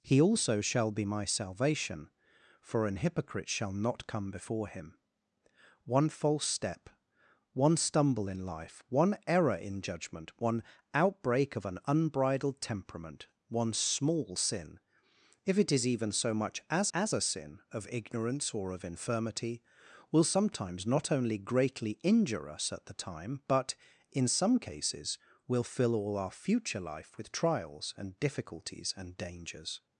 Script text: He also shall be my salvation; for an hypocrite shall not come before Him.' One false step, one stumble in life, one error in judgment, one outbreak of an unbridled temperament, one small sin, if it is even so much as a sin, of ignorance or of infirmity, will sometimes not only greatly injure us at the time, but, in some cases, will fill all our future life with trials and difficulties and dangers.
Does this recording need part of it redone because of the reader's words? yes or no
yes